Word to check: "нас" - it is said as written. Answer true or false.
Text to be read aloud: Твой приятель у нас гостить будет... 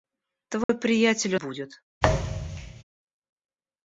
false